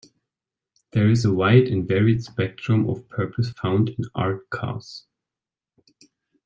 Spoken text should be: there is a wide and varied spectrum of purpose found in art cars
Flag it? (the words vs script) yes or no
no